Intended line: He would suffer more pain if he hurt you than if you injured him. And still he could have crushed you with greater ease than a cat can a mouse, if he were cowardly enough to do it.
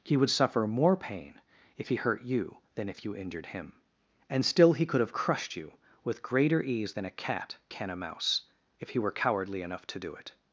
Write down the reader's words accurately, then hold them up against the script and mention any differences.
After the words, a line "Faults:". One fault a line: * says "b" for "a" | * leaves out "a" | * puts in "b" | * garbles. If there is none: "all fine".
He would suffer more pain if he hurt you than if you injured him. And still he could have crushed you with greater ease than a cat can a mouse, if he were cowardly enough to do it.
Faults:
all fine